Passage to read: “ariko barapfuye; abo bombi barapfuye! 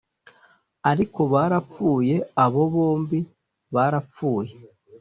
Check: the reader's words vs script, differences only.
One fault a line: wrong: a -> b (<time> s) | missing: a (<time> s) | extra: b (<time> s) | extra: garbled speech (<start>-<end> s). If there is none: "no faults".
no faults